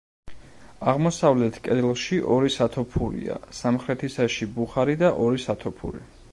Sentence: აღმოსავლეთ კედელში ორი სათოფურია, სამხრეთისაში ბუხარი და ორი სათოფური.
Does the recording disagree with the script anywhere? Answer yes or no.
no